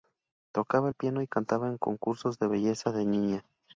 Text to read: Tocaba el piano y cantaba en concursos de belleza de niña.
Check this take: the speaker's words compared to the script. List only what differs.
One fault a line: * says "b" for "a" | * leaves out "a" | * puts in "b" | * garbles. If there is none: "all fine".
all fine